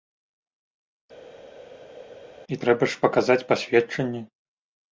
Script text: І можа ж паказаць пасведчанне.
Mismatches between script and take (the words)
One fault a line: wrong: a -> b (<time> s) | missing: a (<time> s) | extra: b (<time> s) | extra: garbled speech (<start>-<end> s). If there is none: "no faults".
wrong: можа -> трэба (2.6 s)